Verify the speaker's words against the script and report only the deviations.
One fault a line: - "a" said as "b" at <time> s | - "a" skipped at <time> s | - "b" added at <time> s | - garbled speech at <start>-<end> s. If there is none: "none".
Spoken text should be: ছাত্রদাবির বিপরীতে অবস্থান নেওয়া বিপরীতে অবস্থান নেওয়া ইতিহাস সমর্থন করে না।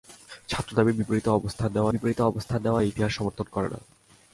none